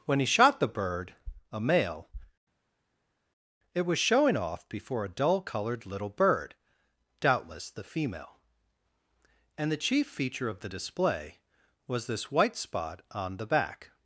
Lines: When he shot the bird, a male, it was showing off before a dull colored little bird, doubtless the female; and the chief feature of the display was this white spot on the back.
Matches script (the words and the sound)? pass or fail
pass